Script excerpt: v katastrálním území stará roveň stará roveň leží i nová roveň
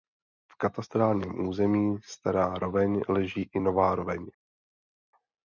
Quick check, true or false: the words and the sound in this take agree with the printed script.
false